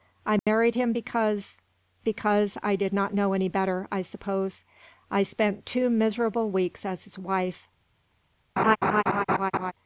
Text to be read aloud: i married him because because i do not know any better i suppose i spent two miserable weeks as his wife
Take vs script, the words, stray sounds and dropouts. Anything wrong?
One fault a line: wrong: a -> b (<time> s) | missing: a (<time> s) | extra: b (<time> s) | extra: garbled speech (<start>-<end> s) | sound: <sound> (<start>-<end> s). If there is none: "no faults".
sound: dropout (0.4-0.5 s)
wrong: do -> did (2.8 s)
sound: laugh (8.6-9.7 s)